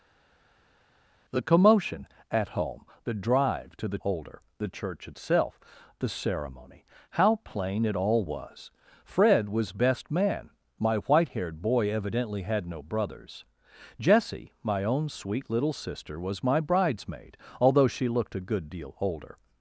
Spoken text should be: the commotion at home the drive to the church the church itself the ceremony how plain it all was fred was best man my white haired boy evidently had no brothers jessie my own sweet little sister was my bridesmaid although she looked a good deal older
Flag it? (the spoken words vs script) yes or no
yes